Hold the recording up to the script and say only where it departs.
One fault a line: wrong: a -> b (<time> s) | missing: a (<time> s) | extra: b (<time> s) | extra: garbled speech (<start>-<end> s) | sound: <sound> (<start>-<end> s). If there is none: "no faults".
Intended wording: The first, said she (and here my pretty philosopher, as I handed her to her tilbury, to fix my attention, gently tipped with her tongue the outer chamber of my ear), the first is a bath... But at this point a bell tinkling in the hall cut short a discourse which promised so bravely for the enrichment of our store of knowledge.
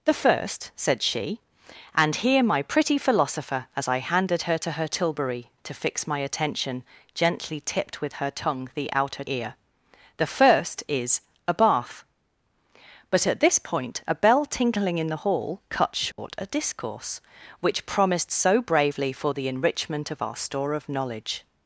missing: chamber of my (9.2 s)
sound: dropout (16.1-16.2 s)